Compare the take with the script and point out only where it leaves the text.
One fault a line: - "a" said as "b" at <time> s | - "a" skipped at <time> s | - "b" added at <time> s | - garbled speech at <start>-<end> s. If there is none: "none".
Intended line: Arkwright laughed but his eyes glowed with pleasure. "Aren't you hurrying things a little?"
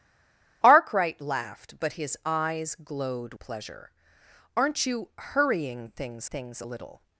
- "with" skipped at 3.3 s
- "things" added at 6.2 s